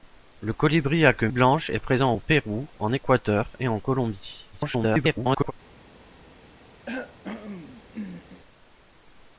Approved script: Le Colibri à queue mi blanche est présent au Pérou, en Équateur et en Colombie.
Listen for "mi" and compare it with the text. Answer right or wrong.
wrong